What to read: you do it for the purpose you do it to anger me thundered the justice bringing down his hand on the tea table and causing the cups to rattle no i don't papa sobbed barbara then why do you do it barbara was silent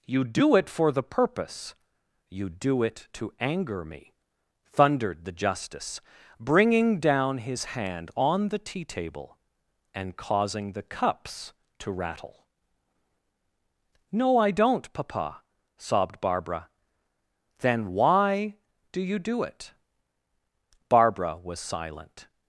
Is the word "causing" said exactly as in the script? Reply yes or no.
yes